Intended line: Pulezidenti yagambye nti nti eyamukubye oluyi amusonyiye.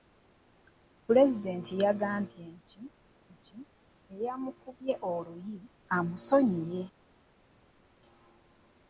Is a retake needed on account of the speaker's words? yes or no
no